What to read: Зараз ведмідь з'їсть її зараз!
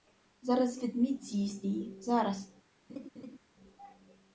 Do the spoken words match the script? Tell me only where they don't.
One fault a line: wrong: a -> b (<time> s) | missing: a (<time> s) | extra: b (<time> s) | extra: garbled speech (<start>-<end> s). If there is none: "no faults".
no faults